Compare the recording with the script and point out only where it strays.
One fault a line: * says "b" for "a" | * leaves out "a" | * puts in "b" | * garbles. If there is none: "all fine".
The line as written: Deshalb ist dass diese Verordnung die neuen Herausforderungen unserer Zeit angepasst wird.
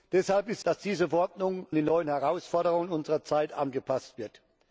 all fine